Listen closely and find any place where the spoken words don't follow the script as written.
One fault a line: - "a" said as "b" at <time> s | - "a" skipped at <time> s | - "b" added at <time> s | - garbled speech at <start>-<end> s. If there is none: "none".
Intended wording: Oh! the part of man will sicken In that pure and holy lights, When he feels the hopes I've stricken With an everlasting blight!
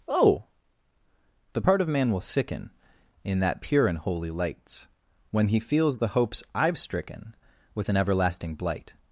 none